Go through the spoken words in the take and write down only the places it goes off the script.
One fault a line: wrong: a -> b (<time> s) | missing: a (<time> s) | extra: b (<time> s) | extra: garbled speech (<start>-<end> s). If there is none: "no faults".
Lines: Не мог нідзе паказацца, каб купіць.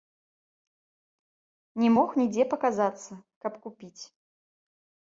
no faults